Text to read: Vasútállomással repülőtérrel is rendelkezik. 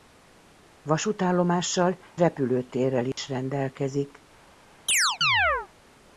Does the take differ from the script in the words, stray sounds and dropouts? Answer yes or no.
yes